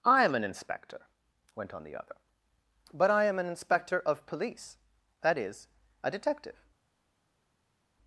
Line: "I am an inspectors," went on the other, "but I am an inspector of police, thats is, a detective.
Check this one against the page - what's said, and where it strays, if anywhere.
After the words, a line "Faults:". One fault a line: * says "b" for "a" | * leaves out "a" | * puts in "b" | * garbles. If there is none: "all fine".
"I am an inspector," went on the other, "but I am an inspector of police, that is, a detective.
Faults:
* says "inspector" for "inspectors"
* says "that" for "thats"